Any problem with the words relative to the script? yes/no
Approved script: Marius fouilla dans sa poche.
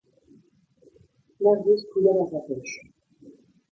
no